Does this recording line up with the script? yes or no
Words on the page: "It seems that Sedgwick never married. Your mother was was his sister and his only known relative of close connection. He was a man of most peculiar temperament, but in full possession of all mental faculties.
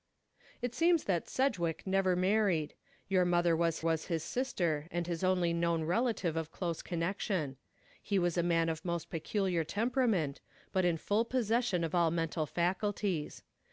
yes